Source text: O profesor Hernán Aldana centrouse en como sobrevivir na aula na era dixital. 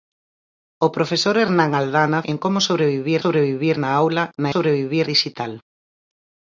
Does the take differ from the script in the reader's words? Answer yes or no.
yes